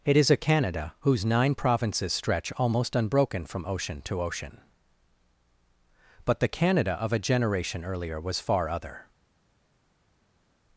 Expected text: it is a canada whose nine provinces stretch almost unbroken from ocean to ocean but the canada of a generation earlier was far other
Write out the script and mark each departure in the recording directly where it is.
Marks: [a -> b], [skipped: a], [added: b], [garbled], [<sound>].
it is a canada whose nine provinces stretch almost unbroken from ocean to ocean but the canada of a generation earlier was far other